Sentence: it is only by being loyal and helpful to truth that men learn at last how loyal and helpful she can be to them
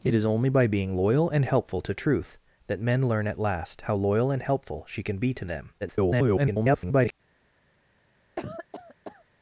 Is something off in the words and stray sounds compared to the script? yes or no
yes